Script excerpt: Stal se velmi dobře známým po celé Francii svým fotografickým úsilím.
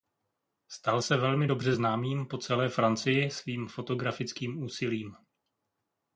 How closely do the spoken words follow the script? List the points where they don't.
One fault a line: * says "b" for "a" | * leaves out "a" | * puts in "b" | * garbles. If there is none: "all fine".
all fine